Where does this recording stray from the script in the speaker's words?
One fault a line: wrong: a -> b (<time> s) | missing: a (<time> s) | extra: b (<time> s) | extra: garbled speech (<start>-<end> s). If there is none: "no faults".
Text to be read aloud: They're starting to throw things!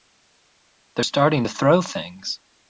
no faults